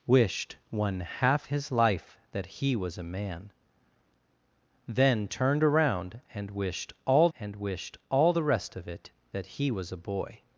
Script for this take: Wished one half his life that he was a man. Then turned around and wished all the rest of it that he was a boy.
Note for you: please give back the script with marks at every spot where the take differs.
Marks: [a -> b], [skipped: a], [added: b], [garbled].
Wished one half his life that he was a man. Then turned around and wished all [added: and wished all] the rest of it that he was a boy.